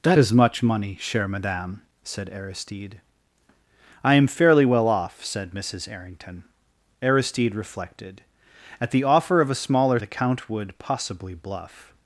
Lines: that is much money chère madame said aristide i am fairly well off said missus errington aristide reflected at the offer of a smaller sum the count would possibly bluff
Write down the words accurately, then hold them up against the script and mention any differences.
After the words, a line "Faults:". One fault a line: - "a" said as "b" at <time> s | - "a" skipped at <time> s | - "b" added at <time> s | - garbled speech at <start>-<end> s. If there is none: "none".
that is much money chère madame said aristide i am fairly well off said missus errington aristide reflected at the offer of a smaller the count would possibly bluff
Faults:
- "sum" skipped at 10.0 s